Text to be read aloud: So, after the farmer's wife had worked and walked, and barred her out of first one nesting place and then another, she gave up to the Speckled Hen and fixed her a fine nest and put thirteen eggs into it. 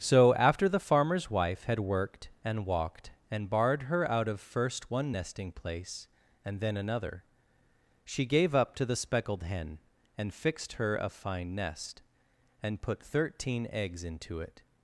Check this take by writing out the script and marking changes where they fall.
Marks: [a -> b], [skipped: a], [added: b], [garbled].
So, after the farmer's wife had worked and walked, and barred her out of first one nesting place and then another, she gave up to the Speckled Hen and fixed her a fine nest and put thirteen eggs into it.